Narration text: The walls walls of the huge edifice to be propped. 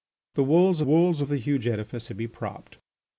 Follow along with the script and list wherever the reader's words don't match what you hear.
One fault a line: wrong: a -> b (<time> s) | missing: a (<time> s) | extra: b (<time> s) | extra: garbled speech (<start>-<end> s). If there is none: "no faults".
no faults